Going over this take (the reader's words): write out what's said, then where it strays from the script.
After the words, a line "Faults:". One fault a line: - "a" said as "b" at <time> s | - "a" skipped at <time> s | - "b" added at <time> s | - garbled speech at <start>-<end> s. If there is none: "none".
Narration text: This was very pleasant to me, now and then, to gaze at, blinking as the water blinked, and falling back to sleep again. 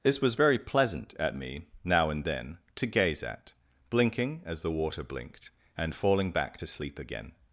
This was very pleasant at me, now and then, to gaze at, blinking as the water blinked, and falling back to sleep again.
Faults:
- "to" said as "at" at 1.2 s